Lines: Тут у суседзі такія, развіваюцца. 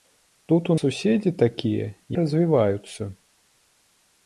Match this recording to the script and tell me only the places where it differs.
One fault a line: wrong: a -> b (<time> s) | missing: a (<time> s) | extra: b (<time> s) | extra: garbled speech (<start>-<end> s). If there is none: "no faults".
no faults